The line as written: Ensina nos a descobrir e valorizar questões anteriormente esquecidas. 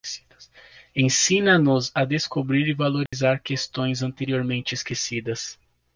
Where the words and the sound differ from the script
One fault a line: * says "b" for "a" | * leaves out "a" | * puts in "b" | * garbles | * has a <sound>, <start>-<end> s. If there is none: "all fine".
* has a dropout, 3.1-3.1 s